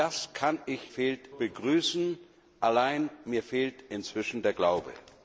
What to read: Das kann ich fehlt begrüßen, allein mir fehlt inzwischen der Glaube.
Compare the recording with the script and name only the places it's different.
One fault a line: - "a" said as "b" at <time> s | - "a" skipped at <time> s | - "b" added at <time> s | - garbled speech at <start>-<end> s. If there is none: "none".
none